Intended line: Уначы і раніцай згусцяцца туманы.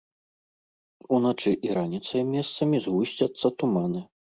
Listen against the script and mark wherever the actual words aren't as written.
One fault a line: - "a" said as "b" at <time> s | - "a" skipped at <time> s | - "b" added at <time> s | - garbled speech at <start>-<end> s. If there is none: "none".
- "месцамі" added at 2.3 s